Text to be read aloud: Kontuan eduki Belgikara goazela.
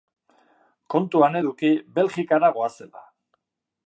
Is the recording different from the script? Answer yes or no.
no